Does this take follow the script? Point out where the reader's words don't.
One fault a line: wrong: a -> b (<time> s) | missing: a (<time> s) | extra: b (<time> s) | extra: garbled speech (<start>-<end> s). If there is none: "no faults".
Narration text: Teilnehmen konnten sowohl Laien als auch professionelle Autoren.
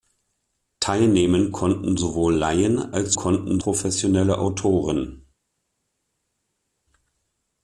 wrong: auch -> konnten (3.1 s)